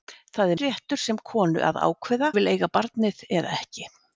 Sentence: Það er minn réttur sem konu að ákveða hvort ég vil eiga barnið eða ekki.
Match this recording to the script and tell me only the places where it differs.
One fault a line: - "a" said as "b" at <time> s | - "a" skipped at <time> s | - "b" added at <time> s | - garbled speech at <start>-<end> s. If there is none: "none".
- "minn" skipped at 0.6 s
- "hvort" skipped at 2.3 s